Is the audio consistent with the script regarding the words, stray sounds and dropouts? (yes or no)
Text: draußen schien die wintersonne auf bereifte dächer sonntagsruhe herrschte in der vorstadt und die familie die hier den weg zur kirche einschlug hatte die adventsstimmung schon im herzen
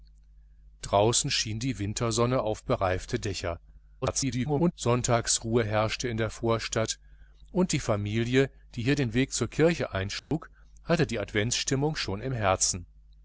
no